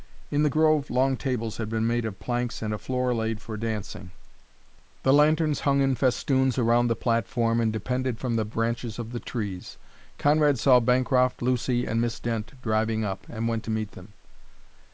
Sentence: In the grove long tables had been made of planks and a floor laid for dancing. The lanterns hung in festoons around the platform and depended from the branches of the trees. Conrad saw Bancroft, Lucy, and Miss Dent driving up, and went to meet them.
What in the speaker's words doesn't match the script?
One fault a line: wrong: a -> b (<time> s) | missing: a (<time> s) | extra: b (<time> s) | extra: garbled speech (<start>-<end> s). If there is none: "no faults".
no faults